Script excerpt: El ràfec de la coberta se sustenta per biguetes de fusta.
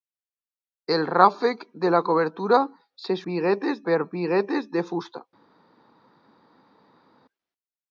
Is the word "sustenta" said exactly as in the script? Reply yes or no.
no